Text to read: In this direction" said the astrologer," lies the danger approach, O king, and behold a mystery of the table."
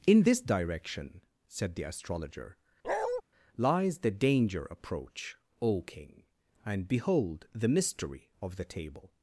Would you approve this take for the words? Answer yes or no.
no